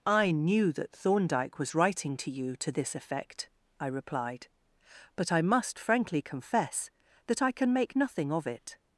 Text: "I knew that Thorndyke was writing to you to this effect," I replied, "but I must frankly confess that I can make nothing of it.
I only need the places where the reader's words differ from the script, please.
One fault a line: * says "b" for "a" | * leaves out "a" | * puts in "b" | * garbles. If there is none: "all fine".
all fine